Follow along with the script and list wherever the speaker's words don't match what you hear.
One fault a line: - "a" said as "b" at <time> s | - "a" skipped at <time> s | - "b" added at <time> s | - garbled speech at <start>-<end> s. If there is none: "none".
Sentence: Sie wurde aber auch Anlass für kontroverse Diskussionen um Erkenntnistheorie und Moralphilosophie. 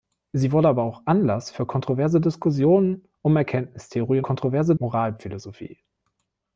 - "und" said as "kontroverse" at 4.2 s